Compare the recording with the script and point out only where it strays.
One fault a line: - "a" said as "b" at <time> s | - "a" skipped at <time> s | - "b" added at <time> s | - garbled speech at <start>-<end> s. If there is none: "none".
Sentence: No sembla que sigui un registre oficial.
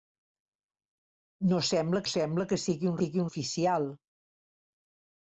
- "sembla" added at 2.1 s
- "registre" said as "sigui" at 3.0 s